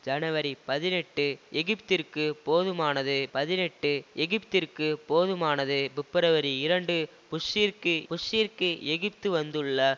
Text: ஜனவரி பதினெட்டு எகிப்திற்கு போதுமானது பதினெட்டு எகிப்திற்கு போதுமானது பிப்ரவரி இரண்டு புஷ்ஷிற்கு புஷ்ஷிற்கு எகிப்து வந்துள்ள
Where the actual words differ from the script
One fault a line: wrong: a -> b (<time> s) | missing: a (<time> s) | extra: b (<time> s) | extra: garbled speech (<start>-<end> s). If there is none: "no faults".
no faults